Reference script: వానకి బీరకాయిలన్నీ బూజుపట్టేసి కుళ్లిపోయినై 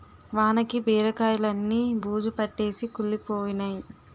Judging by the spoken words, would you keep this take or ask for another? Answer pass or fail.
pass